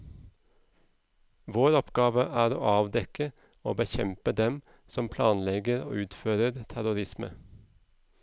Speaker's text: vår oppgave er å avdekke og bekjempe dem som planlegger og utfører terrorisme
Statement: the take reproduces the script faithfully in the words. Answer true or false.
true